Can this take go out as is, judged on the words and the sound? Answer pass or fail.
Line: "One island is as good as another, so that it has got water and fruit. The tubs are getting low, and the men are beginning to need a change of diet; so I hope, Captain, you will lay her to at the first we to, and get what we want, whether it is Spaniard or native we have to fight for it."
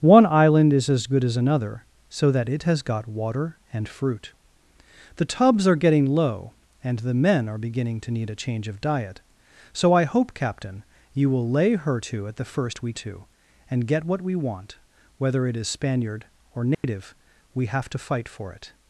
fail